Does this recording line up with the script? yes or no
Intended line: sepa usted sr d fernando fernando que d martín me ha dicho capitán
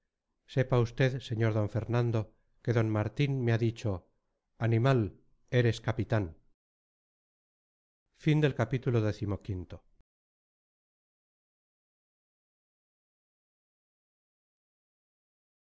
no